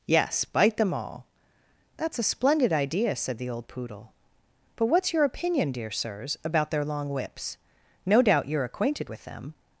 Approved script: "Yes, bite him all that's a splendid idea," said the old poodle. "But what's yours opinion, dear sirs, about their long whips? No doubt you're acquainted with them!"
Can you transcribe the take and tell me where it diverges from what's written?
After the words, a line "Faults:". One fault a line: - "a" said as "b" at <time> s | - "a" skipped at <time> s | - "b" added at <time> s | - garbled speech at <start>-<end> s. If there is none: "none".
"Yes, bite them all that's a splendid idea," said the old poodle. "But what's your opinion, dear sirs, about their long whips? No doubt you're acquainted with them!"
Faults:
- "him" said as "them" at 0.8 s
- "yours" said as "your" at 5.1 s